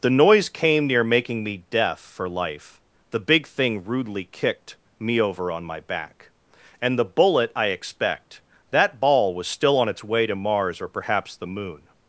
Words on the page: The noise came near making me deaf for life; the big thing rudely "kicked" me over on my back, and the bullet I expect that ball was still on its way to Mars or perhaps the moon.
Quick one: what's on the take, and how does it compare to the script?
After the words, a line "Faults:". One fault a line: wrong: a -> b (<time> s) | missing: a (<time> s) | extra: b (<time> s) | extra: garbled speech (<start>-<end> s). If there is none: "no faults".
The noise came near making me deaf for life; the big thing rudely "kicked" me over on my back, and the bullet I expect that ball was still on its way to Mars or perhaps the moon.
Faults:
no faults